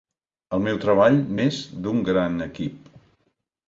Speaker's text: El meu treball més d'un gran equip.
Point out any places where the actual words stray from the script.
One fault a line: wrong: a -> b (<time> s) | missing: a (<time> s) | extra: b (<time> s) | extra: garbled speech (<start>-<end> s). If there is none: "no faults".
no faults